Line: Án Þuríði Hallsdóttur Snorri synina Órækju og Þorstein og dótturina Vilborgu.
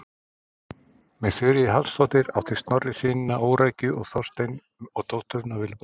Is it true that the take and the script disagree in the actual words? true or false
true